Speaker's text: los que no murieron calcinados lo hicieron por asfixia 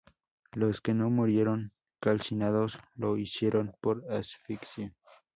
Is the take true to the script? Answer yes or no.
yes